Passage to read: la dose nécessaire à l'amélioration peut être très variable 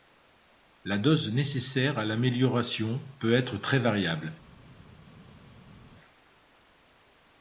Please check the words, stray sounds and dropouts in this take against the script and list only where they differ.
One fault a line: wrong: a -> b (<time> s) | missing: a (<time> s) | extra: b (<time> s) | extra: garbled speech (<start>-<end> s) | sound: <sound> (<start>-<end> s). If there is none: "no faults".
no faults